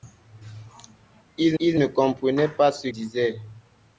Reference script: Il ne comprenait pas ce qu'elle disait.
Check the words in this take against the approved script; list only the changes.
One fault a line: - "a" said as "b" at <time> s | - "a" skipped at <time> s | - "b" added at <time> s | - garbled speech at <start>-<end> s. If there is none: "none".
- "il" added at 1.6 s
- "qu'elle" skipped at 2.9 s